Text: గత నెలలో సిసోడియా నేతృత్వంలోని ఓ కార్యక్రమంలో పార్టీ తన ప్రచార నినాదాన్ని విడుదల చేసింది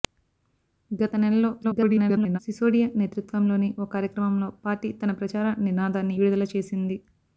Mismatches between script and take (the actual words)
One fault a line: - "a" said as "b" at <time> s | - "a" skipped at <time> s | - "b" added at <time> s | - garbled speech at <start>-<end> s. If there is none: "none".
- garbled speech at 1.6-2.4 s